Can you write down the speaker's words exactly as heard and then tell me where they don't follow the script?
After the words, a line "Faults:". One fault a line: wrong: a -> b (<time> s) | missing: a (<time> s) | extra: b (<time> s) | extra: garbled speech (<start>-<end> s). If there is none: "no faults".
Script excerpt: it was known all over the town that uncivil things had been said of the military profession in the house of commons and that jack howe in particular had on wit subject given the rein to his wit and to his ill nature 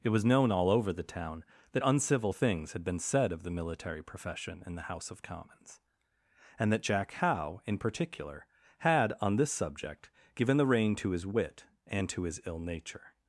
it was known all over the town that uncivil things had been said of the military profession in the house of commons and that jack howe in particular had on this subject given the rein to his wit and to his ill nature
Faults:
wrong: wit -> this (9.4 s)